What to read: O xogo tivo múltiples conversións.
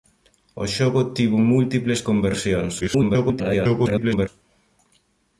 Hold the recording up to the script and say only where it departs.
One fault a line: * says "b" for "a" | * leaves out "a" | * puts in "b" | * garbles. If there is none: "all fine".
* garbles